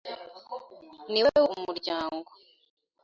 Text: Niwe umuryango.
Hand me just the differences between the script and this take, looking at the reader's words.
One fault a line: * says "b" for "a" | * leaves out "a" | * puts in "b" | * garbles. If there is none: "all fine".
all fine